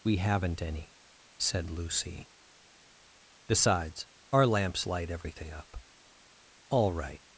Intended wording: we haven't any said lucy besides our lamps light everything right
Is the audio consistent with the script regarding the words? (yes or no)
no